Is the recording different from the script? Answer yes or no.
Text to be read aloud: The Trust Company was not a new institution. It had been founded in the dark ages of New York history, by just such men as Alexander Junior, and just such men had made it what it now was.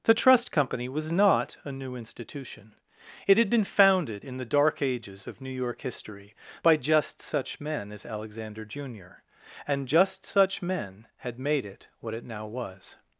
no